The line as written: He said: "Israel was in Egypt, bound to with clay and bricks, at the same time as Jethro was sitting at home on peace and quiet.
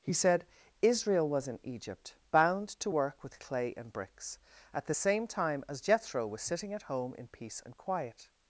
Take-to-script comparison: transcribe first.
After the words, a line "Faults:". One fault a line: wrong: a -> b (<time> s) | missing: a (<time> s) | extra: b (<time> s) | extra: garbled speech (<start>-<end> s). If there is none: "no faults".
He said: "Israel was in Egypt, bound to work with clay and bricks, at the same time as Jethro was sitting at home in peace and quiet.
Faults:
extra: work (2.9 s)
wrong: on -> in (7.1 s)